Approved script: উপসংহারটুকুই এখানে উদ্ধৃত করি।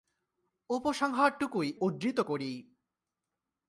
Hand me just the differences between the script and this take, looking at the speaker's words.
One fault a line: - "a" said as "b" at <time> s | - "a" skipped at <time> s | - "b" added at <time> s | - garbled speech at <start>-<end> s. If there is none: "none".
- "এখানে" skipped at 1.7 s